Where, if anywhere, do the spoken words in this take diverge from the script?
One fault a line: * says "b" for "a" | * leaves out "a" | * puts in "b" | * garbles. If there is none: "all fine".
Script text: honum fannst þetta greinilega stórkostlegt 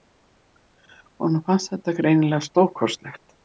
all fine